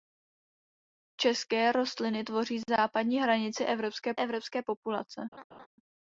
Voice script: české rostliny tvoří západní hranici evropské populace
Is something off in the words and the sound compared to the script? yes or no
yes